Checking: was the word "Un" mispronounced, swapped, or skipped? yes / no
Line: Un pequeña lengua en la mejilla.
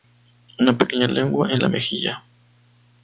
yes